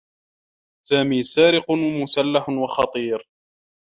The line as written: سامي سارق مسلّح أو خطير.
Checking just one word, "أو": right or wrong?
wrong